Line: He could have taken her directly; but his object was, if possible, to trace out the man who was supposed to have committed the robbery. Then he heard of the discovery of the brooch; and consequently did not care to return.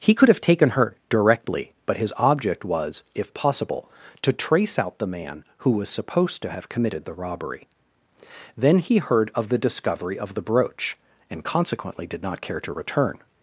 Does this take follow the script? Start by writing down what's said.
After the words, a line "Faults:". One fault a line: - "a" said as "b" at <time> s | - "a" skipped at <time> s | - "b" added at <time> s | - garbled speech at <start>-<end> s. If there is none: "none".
He could have taken her directly; but his object was, if possible, to trace out the man who was supposed to have committed the robbery. Then he heard of the discovery of the brooch; and consequently did not care to return.
Faults:
none